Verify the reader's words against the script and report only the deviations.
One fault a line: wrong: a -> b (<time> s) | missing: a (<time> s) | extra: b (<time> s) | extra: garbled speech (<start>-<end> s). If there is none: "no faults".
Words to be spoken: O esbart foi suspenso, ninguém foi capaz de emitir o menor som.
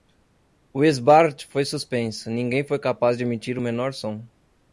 no faults